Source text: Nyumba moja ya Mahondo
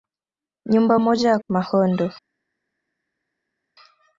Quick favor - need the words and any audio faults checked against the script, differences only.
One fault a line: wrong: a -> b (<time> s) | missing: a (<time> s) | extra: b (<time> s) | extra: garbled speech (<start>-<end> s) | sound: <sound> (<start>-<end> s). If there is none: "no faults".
no faults